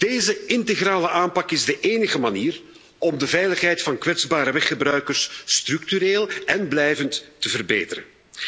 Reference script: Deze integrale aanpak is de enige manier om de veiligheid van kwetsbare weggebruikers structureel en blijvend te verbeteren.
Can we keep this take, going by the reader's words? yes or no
yes